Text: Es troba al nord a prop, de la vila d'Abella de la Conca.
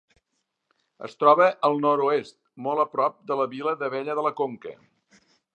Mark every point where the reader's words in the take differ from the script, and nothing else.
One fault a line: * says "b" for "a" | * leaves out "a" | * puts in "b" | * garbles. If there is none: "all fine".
* puts in "oest molt"